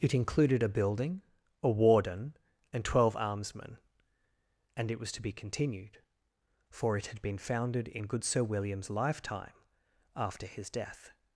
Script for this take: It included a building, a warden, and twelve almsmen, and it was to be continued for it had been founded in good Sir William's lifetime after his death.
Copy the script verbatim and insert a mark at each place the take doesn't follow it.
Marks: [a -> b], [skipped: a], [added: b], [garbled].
It included a building, a warden, and twelve almsmen, and it was to be continued for it had been founded in good Sir William's lifetime after his death.